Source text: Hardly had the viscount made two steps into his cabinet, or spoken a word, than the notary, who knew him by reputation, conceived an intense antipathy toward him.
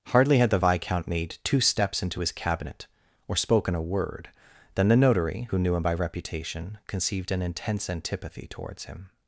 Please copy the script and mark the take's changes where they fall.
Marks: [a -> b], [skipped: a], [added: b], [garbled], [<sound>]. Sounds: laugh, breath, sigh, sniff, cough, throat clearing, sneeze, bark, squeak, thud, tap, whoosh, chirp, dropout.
Hardly had the viscount made two steps into his cabinet, or spoken a word, than the notary, who knew him by reputation, conceived an intense antipathy [toward -> towards] him.